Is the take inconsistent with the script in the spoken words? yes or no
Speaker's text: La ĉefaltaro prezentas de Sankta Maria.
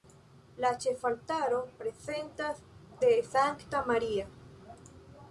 no